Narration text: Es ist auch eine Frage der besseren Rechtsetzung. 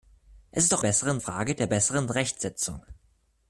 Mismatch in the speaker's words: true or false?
true